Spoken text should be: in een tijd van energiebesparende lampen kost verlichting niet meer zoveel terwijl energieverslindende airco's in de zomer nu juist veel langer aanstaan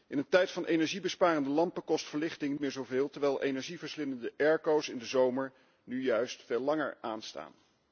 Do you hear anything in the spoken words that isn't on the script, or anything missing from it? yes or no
yes